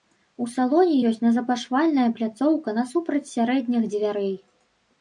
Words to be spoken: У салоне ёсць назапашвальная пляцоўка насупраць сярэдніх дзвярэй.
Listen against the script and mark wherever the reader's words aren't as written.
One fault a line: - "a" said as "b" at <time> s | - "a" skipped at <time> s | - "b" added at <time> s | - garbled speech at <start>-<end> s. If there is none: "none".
none